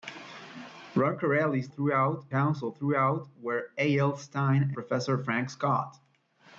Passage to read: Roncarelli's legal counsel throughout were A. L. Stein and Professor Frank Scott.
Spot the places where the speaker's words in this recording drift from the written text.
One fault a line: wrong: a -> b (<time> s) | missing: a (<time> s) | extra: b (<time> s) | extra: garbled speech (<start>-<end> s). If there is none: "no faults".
wrong: legal -> throughout (1.7 s)
missing: and (4.7 s)